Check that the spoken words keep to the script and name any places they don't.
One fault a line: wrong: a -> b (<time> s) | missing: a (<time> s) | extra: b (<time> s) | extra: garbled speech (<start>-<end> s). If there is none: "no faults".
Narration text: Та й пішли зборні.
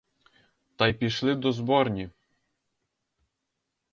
extra: до (1.3 s)